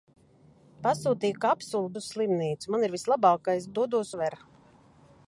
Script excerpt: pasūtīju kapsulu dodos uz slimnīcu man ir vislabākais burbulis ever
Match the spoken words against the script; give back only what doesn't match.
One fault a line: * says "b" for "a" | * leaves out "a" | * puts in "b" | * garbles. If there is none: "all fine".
* leaves out "dodos"
* says "dodos" for "burbulis"